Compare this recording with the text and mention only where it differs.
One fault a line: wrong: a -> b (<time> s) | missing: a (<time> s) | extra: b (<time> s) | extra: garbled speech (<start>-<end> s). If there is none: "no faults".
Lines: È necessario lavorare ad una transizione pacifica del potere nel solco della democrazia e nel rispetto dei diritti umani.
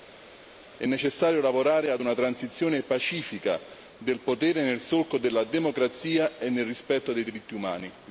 no faults